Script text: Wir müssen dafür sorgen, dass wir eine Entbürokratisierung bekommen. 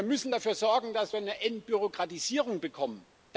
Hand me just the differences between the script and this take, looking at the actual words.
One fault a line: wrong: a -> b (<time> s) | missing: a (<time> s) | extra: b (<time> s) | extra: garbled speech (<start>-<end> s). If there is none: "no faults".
no faults